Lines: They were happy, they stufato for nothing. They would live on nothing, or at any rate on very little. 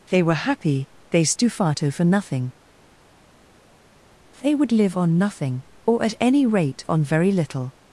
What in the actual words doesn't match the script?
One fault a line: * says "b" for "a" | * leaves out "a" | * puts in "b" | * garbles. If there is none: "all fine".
all fine